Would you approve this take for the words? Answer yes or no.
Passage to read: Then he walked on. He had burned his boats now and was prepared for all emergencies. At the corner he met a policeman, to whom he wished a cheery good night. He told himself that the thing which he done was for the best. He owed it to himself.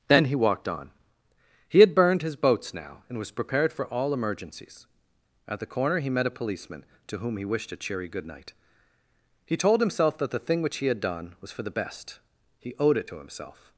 no